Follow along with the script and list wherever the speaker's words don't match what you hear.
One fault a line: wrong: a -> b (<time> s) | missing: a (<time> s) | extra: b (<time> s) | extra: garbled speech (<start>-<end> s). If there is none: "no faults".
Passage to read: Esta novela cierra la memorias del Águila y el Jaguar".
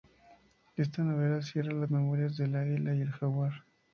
no faults